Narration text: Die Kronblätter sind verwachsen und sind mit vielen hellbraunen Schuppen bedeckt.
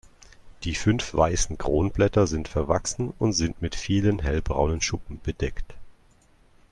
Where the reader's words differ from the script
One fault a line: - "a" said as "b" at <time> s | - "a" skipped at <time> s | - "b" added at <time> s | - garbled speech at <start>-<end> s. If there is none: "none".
- "fünf weißen" added at 0.7 s